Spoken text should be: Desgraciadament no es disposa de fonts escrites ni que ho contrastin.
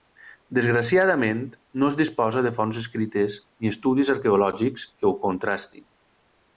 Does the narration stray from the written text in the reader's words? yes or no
yes